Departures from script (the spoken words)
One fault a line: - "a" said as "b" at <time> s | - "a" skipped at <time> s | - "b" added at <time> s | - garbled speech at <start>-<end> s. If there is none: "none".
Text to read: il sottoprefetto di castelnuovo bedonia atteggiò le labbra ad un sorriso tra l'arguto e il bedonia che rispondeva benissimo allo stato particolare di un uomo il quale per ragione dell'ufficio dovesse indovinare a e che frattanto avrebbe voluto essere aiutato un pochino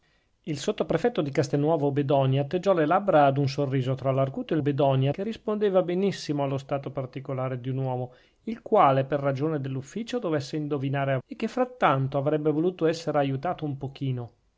none